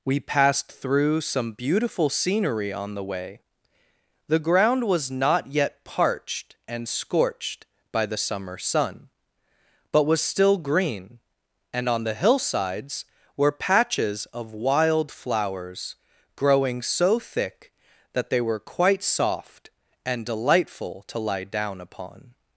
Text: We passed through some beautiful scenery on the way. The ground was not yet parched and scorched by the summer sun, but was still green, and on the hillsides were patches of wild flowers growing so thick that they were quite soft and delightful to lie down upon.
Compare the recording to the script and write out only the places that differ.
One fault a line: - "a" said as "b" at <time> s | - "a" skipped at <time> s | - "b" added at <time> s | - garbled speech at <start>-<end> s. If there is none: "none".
none